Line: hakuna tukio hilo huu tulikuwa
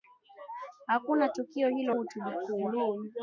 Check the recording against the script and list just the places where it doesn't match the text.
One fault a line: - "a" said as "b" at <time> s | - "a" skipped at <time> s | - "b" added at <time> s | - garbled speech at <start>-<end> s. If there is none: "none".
none